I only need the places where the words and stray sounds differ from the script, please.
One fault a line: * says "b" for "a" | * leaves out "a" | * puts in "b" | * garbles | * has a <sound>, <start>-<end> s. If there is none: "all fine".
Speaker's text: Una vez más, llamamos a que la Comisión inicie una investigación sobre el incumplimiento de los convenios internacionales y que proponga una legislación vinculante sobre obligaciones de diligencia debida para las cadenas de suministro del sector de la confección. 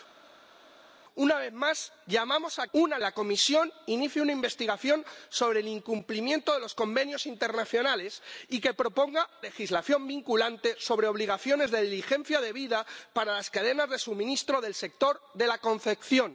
* says "una" for "que"
* leaves out "una"